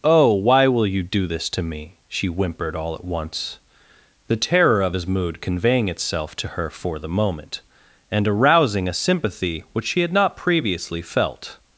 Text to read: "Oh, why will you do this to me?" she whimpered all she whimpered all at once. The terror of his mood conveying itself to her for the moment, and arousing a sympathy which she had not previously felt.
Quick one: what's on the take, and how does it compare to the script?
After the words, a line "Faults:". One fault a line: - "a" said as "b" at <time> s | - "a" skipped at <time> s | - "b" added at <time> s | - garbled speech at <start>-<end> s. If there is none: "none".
"Oh, why will you do this to me?" she whimpered all at once. The terror of his mood conveying itself to her for the moment, and arousing a sympathy which she had not previously felt.
Faults:
- "she whimpered all" skipped at 3.0 s